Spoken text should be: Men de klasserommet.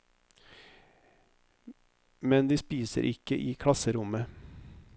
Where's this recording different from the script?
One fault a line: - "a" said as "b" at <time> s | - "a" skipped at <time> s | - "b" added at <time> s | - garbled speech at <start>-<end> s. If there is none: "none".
- "spiser ikke i" added at 2.5 s